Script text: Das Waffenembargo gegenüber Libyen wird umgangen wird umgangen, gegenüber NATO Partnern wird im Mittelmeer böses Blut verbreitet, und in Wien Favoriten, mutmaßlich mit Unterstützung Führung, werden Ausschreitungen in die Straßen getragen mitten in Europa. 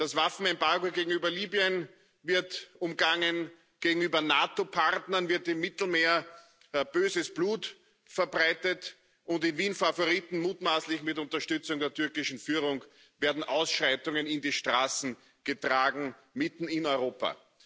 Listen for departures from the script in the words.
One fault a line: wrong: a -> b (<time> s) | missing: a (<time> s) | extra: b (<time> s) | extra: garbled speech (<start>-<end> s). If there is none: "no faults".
missing: wird umgangen (3.5 s)
extra: der türkischen (11.8 s)